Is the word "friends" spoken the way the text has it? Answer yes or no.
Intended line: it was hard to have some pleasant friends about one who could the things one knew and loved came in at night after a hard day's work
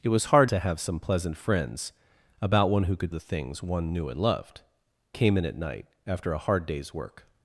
yes